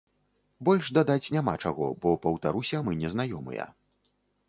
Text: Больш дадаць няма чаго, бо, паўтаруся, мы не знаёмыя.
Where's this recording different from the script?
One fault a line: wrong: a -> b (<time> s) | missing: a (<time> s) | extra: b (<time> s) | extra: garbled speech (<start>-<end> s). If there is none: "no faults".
no faults